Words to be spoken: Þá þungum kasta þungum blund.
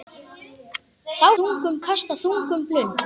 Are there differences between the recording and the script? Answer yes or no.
no